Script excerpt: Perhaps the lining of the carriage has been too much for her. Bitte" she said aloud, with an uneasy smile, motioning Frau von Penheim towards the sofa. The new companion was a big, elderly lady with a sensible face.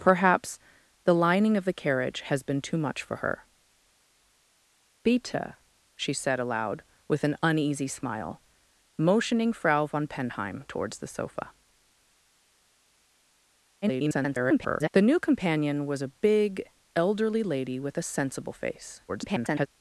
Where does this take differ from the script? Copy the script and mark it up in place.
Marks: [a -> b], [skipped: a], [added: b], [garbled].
Perhaps the lining of the carriage has been too much for her. Bitte" she said aloud, with an uneasy smile, motioning Frau von Penheim towards the sofa. [garbled] The new companion was a big, elderly lady with a sensible face. [garbled]